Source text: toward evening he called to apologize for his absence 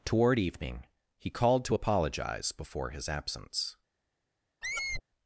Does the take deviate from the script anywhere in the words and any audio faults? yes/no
yes